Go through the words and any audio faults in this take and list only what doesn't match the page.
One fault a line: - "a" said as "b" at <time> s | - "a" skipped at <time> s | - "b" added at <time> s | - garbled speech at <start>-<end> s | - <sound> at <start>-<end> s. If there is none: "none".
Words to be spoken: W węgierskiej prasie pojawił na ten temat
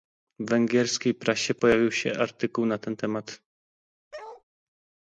- "się artykuł" added at 1.9 s
- bark at 4.1-4.4 s